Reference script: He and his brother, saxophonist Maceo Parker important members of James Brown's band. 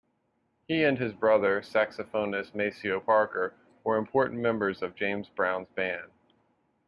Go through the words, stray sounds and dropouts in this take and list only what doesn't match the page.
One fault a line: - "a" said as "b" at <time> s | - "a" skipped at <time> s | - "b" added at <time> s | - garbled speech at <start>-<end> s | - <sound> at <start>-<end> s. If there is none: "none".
- "were" added at 3.8 s